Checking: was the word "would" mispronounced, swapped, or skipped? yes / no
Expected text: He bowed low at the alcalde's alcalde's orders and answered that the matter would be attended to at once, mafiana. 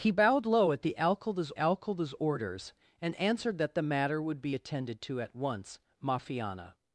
no